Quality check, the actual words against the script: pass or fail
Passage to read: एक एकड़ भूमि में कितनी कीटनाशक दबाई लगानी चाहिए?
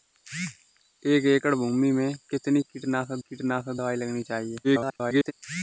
fail